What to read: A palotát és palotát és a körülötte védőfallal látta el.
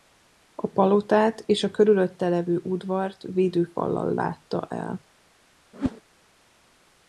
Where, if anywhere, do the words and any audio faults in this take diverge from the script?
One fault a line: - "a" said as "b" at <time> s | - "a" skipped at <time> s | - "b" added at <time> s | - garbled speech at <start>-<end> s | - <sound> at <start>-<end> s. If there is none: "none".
- "palotát és a körülötte" said as "a körülötte levő udvart" at 1.6 s
- whoosh at 5.7-6.0 s